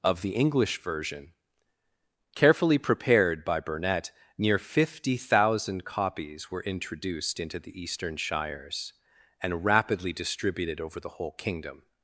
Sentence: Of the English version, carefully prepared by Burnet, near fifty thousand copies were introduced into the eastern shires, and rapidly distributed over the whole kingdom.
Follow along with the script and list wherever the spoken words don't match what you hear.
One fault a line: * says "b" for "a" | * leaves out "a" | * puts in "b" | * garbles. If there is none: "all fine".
all fine